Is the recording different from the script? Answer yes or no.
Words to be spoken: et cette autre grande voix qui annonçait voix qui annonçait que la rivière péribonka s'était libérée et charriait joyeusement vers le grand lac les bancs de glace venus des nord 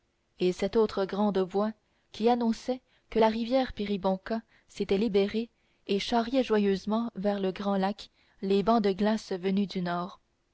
yes